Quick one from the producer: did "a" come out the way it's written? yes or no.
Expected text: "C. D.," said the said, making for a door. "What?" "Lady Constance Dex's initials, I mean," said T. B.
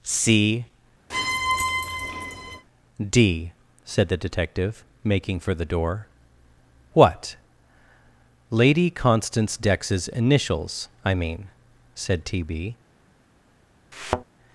no